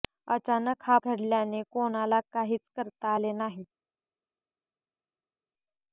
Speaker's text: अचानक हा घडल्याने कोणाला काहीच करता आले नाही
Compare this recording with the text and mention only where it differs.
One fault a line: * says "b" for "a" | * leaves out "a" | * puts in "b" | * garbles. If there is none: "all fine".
all fine